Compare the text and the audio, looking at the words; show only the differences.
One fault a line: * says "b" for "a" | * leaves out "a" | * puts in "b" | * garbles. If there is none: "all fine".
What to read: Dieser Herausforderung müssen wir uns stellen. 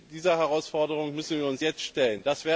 * puts in "jetzt"